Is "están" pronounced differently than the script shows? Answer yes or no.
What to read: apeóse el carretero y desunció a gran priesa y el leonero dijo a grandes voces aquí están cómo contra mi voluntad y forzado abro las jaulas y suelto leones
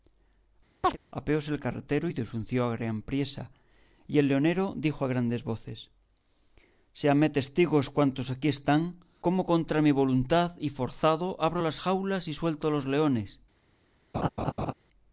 no